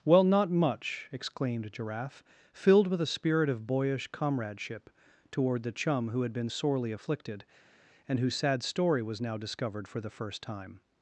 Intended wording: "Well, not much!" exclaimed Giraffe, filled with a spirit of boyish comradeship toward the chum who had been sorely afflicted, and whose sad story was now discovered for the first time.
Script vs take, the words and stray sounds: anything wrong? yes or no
no